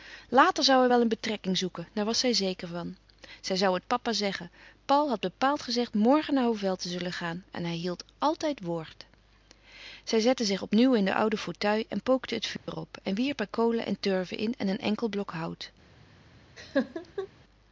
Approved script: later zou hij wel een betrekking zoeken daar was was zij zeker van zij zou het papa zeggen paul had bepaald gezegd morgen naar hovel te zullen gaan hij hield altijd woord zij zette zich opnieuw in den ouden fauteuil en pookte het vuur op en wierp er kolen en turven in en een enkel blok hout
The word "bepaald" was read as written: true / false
true